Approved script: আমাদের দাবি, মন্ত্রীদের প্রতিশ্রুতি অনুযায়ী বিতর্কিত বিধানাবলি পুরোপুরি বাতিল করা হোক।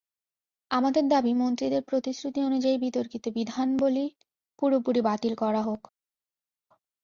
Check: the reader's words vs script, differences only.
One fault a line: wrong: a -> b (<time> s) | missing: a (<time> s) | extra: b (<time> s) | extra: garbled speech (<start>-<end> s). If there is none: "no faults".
no faults